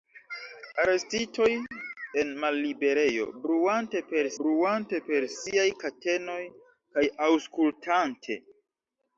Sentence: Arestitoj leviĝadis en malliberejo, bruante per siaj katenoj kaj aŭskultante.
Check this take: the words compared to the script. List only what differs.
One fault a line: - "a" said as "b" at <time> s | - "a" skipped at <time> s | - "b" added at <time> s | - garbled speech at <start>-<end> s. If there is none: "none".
- "leviĝadis" skipped at 1.5 s
- "bruante per" added at 4.4 s